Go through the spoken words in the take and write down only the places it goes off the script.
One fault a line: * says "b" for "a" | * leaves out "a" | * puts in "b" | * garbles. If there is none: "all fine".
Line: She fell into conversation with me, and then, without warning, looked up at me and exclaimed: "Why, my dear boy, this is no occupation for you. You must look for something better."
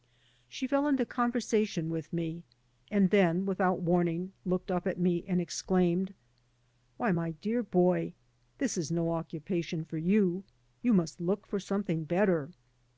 all fine